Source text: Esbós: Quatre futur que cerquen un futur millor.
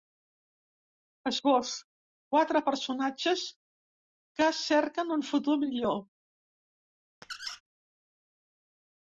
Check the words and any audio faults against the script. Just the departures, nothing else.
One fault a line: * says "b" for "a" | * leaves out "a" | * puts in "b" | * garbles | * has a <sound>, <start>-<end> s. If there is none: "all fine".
* says "personatges" for "futur"
* has a squeak, 7.2-7.6 s